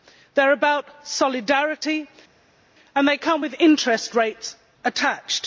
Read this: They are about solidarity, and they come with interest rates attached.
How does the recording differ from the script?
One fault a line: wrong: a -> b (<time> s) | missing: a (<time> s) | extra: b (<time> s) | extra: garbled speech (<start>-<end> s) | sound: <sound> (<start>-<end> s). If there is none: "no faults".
no faults